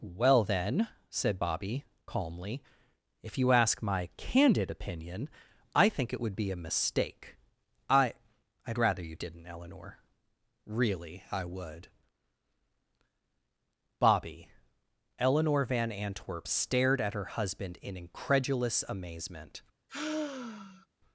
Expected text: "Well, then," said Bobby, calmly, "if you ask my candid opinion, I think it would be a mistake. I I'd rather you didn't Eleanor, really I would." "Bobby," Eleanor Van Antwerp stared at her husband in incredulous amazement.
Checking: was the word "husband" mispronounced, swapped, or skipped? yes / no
no